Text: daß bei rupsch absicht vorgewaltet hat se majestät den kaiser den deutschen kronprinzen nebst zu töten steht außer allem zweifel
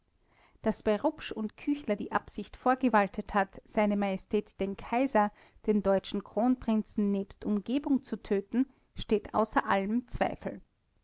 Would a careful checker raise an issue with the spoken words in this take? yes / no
yes